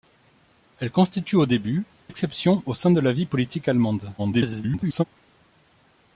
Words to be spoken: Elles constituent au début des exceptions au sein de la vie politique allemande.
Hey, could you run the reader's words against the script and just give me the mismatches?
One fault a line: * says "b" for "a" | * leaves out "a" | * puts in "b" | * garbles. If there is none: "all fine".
* leaves out "des"
* garbles